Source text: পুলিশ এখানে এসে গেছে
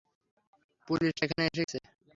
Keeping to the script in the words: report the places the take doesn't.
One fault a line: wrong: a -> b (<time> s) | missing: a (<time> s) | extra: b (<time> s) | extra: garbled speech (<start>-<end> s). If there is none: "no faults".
no faults